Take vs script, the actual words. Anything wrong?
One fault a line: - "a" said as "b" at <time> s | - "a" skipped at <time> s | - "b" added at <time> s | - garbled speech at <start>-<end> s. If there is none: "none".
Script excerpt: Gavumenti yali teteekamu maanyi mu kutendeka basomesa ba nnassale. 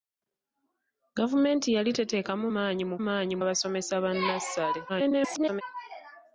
- "kutendeka" said as "maanyi" at 3.1 s
- garbled speech at 4.9-5.6 s